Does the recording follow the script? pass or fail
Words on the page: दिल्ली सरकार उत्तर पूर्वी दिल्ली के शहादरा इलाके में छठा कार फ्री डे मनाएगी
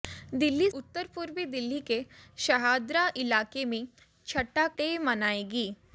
fail